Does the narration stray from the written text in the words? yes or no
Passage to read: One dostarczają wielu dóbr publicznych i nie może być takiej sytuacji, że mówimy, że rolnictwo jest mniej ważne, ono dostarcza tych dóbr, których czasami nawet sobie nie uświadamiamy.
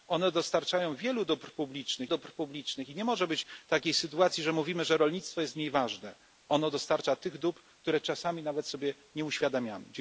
yes